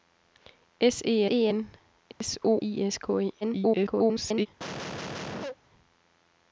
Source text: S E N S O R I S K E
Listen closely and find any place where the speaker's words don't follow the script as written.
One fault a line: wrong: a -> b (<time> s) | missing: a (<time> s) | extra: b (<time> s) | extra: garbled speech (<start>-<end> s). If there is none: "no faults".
extra: E (1.3 s)
missing: R (2.6 s)
extra: garbled speech (3.4-4.5 s)